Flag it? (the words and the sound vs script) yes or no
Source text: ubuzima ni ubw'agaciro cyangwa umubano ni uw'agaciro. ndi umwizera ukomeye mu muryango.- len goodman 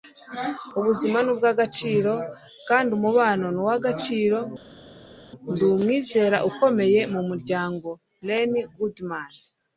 yes